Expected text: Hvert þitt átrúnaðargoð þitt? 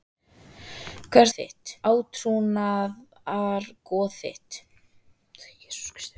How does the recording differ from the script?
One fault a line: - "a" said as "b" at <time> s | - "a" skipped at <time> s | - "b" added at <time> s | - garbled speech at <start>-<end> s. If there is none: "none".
none